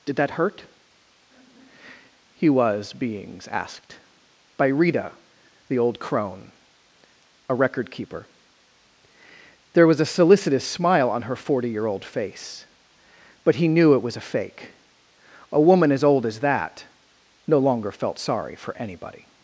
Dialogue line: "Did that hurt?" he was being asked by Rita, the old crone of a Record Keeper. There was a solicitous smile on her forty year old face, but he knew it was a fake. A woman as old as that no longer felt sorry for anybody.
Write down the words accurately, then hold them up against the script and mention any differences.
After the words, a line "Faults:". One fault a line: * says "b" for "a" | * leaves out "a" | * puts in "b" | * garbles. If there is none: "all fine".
"Did that hurt?" he was beings asked by Rita, the old crone a Record Keeper. There was a solicitous smile on her forty year old face, but he knew it was a fake. A woman as old as that no longer felt sorry for anybody.
Faults:
* says "beings" for "being"
* leaves out "of"